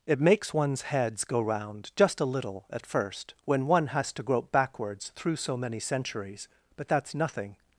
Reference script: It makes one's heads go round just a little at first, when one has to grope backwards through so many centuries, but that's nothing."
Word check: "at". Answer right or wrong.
right